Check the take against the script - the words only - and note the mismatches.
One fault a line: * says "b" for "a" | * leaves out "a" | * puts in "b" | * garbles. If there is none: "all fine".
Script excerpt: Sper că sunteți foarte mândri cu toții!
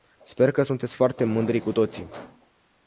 all fine